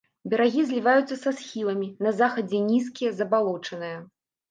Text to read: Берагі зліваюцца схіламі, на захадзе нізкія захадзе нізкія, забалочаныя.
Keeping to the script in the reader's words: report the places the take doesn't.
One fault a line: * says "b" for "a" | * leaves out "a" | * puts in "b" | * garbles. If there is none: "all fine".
* puts in "са"
* leaves out "захадзе нізкія"